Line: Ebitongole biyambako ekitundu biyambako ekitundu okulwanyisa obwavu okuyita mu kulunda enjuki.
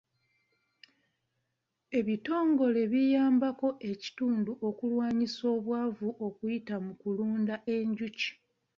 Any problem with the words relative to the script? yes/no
yes